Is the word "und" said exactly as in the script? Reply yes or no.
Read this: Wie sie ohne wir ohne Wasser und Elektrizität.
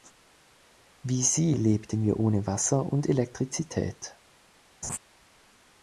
yes